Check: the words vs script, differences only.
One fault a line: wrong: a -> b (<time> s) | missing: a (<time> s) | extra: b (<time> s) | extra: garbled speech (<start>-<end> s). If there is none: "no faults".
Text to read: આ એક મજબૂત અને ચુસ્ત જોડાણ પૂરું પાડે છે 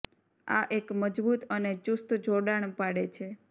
missing: પૂરું (2.8 s)